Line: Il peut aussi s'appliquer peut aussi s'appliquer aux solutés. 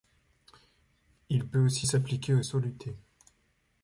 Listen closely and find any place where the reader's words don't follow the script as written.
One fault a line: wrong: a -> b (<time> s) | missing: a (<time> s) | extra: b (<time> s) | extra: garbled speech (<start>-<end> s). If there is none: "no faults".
missing: peut aussi s'appliquer (2.3 s)